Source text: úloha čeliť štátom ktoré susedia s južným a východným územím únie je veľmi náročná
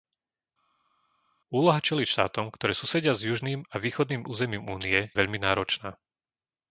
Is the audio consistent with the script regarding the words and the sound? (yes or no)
no